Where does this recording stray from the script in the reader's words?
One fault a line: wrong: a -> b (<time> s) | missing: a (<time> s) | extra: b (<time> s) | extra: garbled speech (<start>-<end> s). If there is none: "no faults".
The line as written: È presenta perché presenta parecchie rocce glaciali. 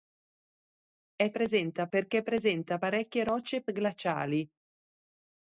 no faults